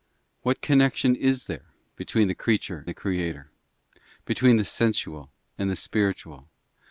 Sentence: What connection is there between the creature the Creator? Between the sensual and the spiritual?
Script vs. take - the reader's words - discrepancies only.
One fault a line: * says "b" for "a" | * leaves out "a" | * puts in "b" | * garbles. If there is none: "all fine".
all fine